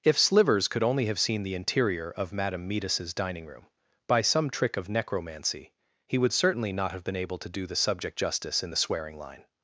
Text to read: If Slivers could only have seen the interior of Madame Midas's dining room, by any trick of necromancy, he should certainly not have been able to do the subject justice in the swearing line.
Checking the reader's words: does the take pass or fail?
fail